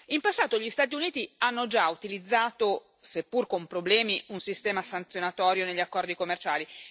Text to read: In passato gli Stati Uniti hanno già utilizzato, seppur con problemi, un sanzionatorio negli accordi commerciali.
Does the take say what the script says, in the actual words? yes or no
no